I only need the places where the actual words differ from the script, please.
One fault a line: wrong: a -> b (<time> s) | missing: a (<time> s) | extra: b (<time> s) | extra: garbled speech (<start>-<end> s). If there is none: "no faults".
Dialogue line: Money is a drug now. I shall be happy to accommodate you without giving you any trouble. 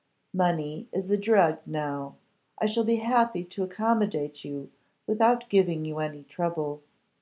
no faults